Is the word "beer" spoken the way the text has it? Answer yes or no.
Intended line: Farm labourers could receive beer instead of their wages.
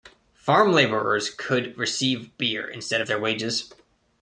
yes